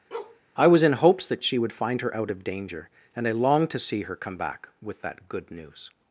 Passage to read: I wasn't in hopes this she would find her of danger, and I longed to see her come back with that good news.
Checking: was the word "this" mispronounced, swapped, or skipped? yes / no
yes